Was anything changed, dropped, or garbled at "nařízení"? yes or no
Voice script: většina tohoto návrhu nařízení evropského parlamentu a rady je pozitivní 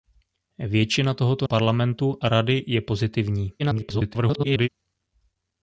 yes